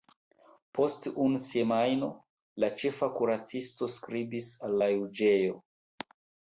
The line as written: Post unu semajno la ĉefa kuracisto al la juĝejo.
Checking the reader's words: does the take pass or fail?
fail